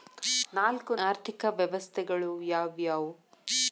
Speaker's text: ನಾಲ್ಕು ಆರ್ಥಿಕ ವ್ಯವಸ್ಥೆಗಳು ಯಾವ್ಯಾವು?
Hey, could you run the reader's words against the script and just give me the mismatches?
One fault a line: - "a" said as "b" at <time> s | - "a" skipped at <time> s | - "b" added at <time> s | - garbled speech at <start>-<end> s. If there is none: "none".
none